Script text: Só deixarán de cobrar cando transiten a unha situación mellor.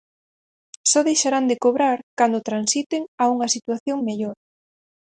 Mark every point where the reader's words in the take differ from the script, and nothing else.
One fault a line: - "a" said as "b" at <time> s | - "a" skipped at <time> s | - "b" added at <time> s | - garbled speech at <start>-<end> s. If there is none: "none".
none